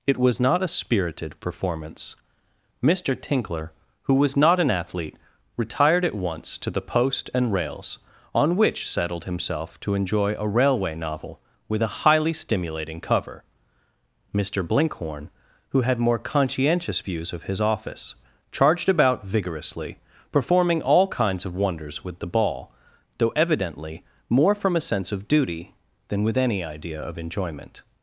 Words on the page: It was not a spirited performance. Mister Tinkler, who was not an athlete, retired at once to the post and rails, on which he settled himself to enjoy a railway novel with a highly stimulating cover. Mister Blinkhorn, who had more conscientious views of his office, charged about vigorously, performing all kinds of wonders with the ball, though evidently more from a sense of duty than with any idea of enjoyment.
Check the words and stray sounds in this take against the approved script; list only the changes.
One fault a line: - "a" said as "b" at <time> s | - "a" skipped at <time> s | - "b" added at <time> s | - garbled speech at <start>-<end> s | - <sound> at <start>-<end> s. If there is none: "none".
- "he" skipped at 8.9 s